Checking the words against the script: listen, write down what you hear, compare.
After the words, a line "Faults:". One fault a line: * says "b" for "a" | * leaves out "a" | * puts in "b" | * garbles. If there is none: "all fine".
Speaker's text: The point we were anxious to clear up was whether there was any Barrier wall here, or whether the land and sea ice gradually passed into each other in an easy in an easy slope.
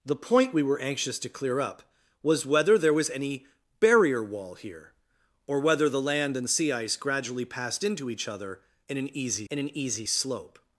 The point we were anxious to clear up was whether there was any Barrier wall here, or whether the land and sea ice gradually passed into each other in an easy in an easy slope.
Faults:
all fine